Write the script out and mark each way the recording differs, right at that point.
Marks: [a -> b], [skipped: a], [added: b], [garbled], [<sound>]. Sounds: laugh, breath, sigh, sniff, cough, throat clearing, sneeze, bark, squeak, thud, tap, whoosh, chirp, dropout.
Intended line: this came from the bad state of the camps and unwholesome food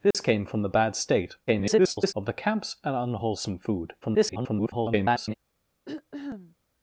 this [dropout] came from the bad state [garbled] of the camps and unwholesome food [garbled] [throat clearing]